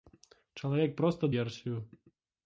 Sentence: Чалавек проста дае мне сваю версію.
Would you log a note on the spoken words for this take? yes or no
yes